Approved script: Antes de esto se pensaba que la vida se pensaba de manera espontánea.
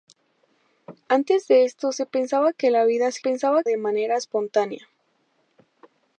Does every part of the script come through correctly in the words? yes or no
yes